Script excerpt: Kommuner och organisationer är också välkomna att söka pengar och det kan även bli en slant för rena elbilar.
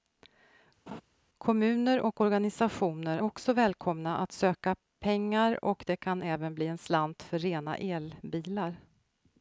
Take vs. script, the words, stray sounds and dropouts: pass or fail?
fail